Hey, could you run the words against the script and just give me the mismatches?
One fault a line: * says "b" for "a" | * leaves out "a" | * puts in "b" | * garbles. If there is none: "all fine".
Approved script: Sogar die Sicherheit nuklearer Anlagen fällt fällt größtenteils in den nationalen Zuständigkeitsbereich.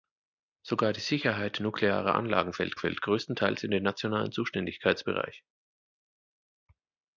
all fine